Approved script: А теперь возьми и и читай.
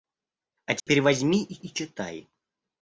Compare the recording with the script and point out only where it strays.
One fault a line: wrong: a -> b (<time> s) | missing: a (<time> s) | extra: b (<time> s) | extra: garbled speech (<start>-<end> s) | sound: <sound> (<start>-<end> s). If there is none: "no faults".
sound: dropout (0.8-0.9 s)